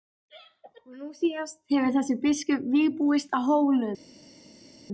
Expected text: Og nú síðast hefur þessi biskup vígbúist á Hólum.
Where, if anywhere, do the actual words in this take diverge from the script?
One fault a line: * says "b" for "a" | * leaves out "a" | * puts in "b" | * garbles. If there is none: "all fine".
all fine